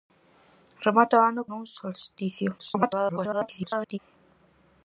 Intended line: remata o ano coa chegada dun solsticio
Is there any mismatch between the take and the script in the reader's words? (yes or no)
yes